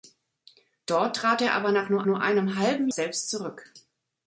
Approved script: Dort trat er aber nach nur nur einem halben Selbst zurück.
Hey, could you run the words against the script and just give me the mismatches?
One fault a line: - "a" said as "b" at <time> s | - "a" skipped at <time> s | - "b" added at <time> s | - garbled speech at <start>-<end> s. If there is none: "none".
none